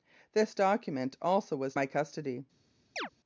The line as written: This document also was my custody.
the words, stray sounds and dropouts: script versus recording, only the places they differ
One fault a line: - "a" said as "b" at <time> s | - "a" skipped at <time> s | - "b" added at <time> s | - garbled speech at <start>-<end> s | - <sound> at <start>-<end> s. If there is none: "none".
- chirp at 3.0-3.1 s